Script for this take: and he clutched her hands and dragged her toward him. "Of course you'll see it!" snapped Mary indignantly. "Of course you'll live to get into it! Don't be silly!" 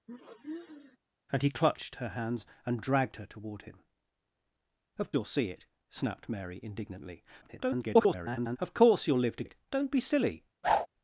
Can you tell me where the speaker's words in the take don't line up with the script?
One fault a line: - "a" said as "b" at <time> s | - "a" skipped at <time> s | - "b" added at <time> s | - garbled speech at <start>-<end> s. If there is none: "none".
- "course" skipped at 5.1 s
- garbled speech at 7.4-8.6 s
- "get into" skipped at 9.4 s